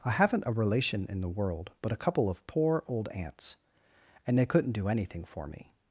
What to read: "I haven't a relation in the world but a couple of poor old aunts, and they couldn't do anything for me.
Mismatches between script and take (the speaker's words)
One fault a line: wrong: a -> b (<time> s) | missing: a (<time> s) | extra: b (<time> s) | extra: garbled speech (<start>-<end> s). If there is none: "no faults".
no faults